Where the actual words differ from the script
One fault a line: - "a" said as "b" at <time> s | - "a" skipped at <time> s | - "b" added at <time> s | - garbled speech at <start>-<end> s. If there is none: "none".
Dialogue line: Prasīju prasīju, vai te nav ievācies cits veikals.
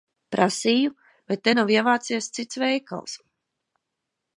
- "prasīju" skipped at 0.9 s